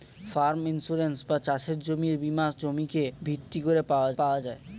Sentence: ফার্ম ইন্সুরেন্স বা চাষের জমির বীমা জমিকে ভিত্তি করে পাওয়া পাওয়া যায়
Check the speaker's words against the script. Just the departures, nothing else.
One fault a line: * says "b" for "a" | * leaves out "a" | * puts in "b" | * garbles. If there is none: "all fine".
all fine